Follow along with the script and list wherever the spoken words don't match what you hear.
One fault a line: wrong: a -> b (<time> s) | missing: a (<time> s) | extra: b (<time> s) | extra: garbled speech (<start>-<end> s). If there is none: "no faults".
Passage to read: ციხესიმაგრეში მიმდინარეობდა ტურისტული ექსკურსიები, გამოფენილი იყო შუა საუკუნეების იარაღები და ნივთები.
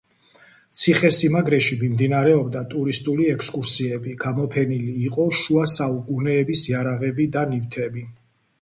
no faults